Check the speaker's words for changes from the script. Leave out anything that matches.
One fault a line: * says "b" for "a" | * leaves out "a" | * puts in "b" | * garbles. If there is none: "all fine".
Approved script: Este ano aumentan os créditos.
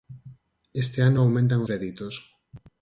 * leaves out "os"